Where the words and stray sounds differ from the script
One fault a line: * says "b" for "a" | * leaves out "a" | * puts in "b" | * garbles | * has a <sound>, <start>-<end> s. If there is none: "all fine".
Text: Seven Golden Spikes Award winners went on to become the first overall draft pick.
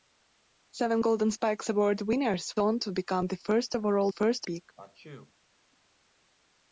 * leaves out "went"
* says "first" for "draft"
* has a sneeze, 4.8-5.3 s